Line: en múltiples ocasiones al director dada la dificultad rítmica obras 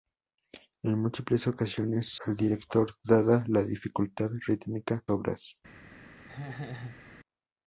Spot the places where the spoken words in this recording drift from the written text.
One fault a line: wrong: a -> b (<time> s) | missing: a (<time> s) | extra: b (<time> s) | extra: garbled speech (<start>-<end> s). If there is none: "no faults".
no faults